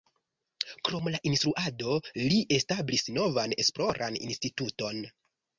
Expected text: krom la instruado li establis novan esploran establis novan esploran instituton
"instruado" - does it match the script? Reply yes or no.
yes